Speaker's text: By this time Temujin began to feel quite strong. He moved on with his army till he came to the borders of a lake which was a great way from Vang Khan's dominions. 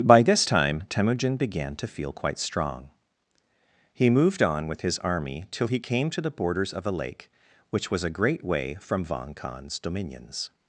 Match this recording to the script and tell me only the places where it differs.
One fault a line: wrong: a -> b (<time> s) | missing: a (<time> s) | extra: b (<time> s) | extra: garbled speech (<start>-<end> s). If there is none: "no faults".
no faults